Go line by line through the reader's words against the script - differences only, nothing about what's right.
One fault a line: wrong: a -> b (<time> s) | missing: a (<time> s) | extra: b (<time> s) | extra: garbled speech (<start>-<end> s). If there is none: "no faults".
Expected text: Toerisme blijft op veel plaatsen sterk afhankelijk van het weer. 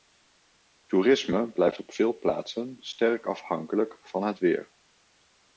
no faults